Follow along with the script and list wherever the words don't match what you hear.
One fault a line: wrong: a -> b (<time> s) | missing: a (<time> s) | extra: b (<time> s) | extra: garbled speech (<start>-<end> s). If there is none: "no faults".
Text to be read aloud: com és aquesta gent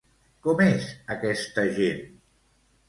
no faults